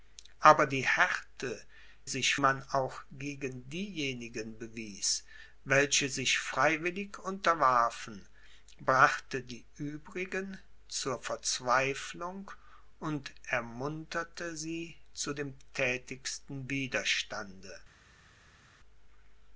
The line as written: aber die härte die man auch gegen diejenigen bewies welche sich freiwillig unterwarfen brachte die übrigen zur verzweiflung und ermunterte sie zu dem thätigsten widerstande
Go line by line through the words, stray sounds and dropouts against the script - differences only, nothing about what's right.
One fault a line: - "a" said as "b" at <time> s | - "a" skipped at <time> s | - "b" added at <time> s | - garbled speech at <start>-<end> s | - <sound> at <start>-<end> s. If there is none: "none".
- "die" said as "sich" at 2.1 s